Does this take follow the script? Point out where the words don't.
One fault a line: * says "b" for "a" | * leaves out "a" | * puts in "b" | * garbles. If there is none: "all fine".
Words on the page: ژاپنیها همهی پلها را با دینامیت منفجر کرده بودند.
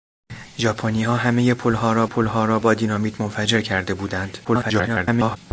* puts in "پلها را"
* garbles